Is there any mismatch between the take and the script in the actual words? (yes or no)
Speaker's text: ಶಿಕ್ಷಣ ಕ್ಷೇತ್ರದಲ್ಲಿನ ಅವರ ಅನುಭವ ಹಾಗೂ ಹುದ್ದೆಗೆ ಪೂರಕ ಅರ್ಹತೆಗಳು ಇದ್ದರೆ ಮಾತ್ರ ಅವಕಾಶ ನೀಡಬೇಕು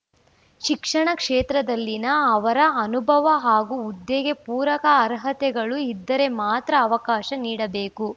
no